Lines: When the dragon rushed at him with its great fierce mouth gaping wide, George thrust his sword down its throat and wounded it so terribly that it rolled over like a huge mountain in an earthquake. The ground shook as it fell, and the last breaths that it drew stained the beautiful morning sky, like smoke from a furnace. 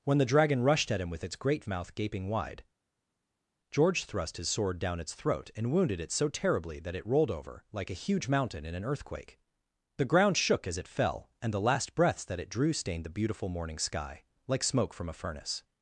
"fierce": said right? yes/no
no